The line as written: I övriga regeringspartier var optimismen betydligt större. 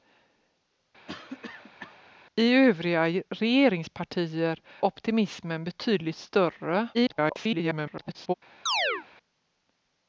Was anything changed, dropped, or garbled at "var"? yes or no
yes